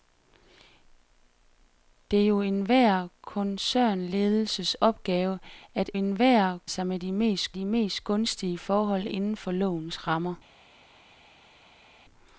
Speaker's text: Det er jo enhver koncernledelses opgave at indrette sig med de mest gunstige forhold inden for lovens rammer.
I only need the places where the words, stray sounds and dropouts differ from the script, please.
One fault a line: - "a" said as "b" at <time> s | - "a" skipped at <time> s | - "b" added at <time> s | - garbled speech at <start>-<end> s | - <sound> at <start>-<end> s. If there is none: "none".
- "indrette" said as "enhver" at 5.9 s
- "de mest" added at 7.5 s